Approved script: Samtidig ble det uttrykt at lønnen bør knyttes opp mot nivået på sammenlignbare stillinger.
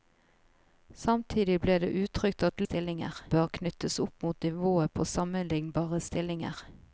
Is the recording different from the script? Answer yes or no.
yes